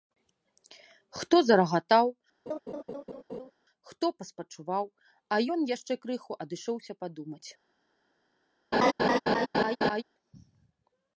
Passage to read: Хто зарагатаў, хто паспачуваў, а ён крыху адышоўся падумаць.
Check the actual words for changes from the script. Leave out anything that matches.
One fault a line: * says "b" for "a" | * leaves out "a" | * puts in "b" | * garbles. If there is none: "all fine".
* puts in "яшчэ"